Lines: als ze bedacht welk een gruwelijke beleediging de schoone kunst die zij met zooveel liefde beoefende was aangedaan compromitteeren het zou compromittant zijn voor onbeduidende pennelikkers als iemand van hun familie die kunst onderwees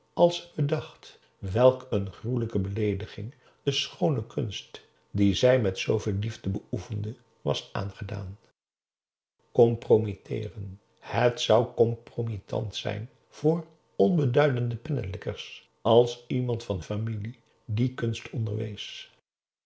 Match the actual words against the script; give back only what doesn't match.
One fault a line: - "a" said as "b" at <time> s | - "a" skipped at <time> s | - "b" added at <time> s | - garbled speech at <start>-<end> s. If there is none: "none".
- "hun" skipped at 16.8 s